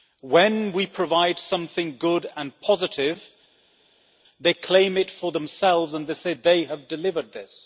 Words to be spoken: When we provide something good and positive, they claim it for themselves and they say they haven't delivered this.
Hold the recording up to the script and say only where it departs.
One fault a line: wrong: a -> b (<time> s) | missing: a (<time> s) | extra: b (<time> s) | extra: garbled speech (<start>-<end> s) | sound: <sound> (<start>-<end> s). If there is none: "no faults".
wrong: haven't -> have (6.7 s)